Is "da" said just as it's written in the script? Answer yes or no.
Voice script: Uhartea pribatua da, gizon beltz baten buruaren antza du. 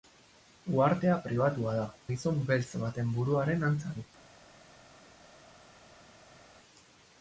yes